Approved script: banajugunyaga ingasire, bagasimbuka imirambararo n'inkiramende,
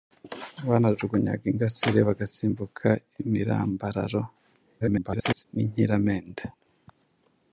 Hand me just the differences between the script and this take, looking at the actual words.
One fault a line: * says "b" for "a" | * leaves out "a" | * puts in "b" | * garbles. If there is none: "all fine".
* garbles